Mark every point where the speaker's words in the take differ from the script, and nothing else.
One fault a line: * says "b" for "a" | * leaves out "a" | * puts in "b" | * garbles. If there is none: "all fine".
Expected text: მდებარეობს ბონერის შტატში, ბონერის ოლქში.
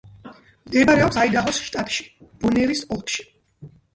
* says "აიდაჰოს" for "ბონერის"